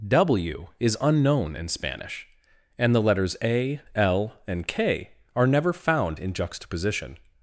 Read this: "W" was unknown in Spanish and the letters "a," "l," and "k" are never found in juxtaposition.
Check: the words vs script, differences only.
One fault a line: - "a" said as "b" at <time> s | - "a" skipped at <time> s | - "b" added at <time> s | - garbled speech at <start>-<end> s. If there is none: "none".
- "was" said as "is" at 0.8 s